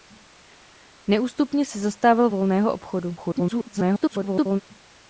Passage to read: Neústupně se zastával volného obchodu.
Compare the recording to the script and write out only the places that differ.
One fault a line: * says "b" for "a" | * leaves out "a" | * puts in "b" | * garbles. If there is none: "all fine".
* garbles